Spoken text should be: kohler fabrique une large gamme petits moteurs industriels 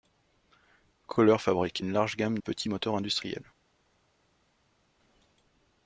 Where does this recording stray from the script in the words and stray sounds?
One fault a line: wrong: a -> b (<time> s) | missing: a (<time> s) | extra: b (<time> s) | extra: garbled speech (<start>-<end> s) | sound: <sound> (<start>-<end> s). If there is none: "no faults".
no faults